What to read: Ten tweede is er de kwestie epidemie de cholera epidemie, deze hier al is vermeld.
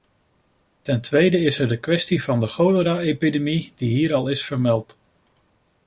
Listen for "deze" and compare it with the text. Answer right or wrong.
wrong